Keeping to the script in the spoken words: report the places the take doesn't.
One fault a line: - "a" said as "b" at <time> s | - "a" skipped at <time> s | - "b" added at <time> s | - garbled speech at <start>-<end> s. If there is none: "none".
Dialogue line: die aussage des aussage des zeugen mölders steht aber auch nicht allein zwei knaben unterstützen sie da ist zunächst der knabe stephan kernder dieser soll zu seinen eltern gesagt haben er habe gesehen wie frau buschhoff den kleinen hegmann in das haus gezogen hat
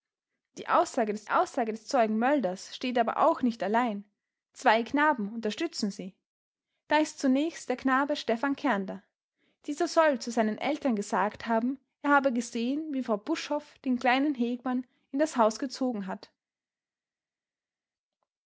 none